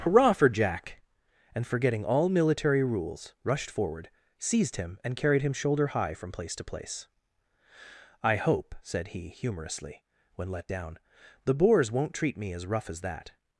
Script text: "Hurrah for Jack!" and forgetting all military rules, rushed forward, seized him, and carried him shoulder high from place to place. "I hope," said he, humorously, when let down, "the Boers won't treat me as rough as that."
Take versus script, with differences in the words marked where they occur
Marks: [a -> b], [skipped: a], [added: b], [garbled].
"Hurrah for Jack!" and forgetting all military rules, rushed forward, seized him, and carried him shoulder high from place to place. "I hope," said he, humorously, when let down, "the Boers won't treat me as rough as that."